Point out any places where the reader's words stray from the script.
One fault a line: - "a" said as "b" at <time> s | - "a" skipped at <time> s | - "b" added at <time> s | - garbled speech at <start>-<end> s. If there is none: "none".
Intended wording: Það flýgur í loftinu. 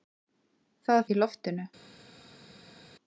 - "flýgur" skipped at 1.0 s